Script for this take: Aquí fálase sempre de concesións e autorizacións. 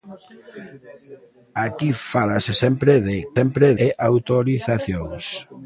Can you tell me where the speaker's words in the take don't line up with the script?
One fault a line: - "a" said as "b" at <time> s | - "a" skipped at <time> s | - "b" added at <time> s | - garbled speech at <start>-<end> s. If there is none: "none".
- "concesións" said as "sempre" at 3.4 s